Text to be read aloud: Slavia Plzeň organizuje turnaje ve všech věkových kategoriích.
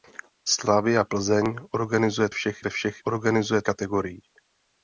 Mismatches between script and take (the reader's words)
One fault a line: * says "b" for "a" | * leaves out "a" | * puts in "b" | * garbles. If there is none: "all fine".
* says "všech" for "turnaje"
* says "organizuje" for "věkových"